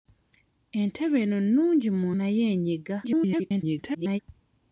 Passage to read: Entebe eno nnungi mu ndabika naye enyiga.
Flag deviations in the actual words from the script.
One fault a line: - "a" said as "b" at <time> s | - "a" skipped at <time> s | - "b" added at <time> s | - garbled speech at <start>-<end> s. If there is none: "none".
- "ndabika" skipped at 2.1 s
- garbled speech at 3.0-4.2 s